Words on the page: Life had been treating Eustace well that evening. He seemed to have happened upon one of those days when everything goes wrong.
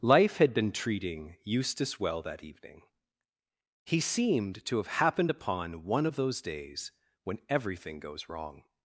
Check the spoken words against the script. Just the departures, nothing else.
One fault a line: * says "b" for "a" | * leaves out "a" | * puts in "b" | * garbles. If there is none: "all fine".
all fine